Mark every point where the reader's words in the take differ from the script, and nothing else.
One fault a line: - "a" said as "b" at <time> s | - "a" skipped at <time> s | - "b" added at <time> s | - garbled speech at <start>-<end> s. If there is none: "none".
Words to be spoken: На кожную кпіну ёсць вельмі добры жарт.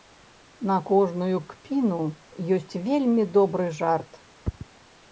none